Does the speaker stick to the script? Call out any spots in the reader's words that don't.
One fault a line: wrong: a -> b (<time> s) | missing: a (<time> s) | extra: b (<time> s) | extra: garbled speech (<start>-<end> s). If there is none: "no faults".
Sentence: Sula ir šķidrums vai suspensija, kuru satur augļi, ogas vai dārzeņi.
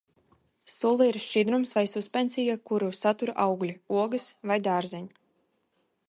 no faults